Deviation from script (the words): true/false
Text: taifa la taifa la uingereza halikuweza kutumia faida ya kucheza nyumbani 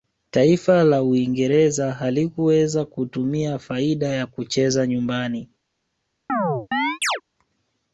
true